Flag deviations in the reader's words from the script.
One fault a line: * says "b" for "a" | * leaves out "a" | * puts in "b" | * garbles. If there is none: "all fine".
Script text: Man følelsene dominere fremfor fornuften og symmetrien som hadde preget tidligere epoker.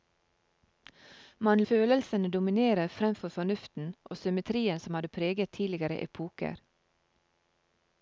all fine